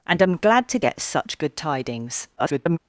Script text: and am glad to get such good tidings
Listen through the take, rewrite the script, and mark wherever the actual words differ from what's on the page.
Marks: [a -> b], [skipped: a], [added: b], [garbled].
and am glad to get such good tidings [garbled]